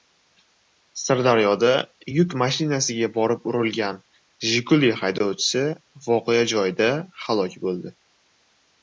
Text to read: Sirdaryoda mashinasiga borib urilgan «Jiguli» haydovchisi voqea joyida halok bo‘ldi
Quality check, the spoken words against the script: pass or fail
fail